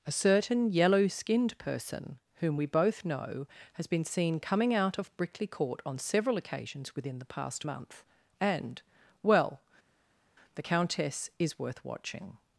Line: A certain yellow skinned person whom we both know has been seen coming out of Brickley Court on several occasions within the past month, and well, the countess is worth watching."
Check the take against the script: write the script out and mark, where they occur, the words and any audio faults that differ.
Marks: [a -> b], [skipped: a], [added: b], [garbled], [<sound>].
A certain yellow skinned person whom we both know has been seen coming out of Brickley Court on several occasions within the past month, and well, the countess is worth watching."